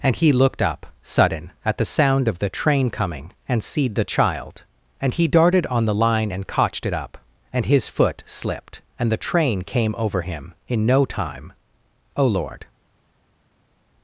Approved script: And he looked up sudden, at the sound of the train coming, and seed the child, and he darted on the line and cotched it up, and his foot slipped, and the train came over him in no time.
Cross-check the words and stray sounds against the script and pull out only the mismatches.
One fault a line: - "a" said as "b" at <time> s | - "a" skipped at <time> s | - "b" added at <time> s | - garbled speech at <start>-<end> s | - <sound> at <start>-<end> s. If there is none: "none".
- "O Lord" added at 12.2 s